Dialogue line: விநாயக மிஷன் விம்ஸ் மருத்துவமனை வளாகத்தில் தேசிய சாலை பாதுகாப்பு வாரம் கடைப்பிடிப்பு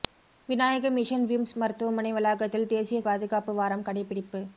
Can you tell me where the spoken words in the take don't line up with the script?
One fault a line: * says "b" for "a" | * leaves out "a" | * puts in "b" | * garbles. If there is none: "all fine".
* leaves out "சாலை"